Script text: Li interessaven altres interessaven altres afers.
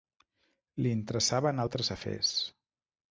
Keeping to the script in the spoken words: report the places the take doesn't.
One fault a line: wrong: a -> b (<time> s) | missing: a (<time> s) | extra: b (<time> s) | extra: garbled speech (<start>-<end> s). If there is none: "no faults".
missing: interessaven altres (1.9 s)